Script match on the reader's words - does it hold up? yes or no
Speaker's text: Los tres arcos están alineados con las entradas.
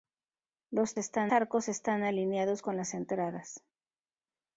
no